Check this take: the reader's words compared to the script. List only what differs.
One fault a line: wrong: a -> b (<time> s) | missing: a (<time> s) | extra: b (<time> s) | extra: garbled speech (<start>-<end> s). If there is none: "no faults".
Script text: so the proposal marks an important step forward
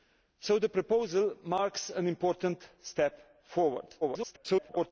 extra: garbled speech (4.0-4.9 s)